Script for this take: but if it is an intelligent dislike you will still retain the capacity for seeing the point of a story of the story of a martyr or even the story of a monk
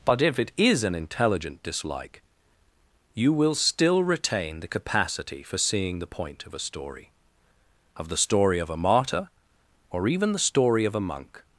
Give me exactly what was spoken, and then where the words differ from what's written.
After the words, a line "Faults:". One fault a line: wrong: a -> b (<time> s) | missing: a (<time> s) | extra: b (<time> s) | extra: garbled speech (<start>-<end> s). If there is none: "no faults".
but if it is an intelligent dislike you will still retain the capacity for seeing the point of a story of the story of a martyr or even the story of a monk
Faults:
no faults